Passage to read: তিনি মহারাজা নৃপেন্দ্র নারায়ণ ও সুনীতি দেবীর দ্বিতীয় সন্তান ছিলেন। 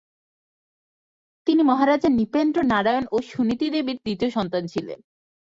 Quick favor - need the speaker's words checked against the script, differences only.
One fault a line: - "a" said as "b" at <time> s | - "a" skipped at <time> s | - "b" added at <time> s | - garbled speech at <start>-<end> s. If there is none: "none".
none